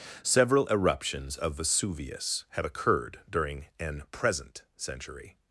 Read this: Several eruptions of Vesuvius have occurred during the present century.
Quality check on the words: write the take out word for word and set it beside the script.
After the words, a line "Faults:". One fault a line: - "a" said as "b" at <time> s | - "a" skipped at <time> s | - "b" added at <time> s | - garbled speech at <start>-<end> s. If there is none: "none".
Several eruptions of Vesuvius have occurred during an present century.
Faults:
- "the" said as "an" at 3.8 s